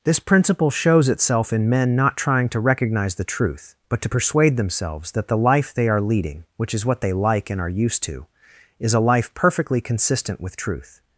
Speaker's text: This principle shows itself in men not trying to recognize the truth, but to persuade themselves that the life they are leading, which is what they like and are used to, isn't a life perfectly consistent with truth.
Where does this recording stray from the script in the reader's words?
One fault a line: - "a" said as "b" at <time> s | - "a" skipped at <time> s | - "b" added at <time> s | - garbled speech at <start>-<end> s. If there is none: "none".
- "isn't" said as "is" at 8.8 s